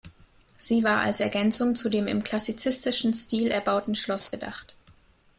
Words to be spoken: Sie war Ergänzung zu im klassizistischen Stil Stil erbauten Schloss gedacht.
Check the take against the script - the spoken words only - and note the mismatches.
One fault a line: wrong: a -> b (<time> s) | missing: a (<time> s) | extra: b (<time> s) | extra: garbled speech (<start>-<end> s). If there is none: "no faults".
extra: als (1.0 s)
extra: dem (1.9 s)
missing: Stil (3.5 s)